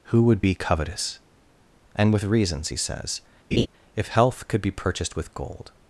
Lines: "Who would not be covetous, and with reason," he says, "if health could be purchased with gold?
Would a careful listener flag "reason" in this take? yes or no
yes